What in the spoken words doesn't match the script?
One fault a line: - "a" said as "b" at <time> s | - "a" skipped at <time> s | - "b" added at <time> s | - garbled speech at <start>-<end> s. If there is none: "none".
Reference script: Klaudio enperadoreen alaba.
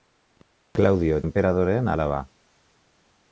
none